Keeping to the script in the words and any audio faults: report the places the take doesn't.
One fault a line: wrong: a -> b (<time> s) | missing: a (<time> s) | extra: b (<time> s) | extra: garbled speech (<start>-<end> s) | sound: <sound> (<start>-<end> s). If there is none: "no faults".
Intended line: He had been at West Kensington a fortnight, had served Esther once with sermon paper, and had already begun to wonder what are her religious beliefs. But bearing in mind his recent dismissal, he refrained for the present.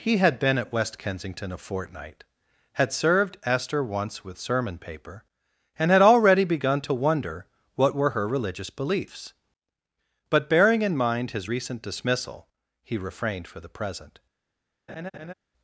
wrong: are -> were (7.9 s)
sound: laugh (14.9-15.3 s)